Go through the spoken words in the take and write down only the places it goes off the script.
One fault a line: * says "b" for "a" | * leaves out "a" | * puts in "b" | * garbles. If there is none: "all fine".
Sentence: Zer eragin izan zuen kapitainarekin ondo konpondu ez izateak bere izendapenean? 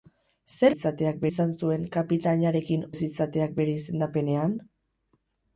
* says "izateak" for "eragin"
* leaves out "ondo konpondu"